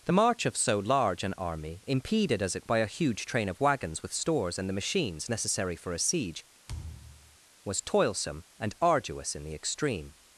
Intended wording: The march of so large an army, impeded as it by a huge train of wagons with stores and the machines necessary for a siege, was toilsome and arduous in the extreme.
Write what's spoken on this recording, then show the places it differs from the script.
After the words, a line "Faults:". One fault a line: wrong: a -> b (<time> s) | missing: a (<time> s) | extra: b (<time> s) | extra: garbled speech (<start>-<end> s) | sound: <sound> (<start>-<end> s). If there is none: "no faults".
The march of so large an army, impeded as it by a huge train of wagons with stores and the machines necessary for a siege, was toilsome and arduous in the extreme.
Faults:
sound: thud (6.7-7.4 s)